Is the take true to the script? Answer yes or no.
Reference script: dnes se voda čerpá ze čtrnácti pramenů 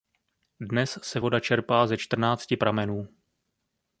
yes